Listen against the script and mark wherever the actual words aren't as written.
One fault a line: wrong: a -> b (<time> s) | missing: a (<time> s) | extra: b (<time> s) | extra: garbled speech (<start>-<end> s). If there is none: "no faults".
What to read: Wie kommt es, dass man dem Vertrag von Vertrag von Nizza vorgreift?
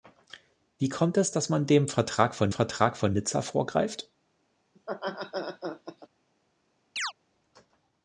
no faults